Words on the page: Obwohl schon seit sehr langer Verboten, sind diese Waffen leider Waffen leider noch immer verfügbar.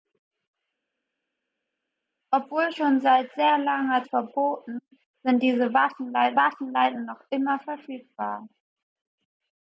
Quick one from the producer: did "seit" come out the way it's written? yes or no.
yes